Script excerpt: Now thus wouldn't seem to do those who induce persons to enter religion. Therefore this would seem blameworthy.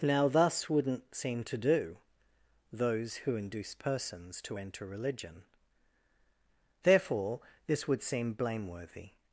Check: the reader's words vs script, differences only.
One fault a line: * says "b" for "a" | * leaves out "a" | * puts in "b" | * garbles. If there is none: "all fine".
all fine